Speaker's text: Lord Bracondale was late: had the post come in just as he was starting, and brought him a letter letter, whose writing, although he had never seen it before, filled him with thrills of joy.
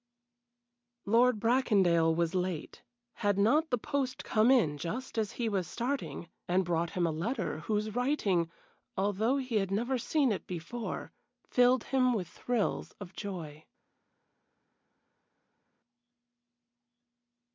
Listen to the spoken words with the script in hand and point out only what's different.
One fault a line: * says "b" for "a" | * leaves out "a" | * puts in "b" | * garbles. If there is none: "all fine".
* puts in "not"
* leaves out "letter"